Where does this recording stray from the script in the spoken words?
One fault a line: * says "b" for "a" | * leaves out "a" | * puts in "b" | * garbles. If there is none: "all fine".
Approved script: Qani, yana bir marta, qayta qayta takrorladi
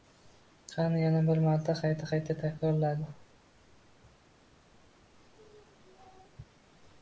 all fine